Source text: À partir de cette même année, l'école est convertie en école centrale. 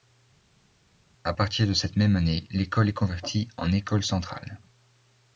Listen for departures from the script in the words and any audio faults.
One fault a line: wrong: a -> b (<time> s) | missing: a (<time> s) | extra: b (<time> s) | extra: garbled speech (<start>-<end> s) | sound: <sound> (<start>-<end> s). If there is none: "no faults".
no faults